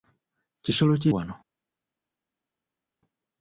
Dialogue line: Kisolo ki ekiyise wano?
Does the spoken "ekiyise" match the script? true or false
false